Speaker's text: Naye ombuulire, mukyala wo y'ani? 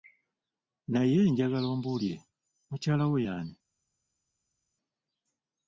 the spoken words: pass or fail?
fail